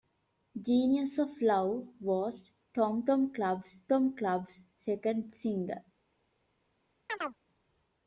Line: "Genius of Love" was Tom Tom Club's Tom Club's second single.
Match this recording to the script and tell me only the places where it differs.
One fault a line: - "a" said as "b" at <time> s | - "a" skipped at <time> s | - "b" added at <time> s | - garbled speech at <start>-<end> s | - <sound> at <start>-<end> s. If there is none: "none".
- chirp at 7.1-7.4 s